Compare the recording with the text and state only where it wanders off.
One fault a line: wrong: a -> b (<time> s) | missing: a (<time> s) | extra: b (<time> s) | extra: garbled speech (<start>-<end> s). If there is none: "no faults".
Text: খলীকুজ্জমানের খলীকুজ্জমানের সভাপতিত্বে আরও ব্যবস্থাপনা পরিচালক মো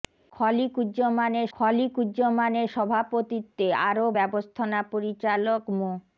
no faults